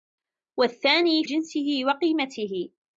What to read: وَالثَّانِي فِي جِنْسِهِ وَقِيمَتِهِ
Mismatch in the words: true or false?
true